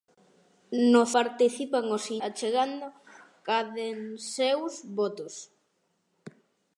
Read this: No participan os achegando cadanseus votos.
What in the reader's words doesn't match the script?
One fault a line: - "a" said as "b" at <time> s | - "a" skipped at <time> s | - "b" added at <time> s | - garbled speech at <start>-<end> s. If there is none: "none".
none